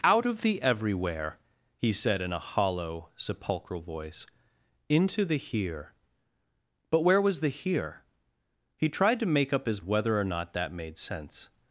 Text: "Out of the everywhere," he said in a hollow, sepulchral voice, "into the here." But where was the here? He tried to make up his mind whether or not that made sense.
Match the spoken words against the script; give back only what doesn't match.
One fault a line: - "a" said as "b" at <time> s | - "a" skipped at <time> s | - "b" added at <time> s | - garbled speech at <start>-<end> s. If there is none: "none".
- "mind" skipped at 9.8 s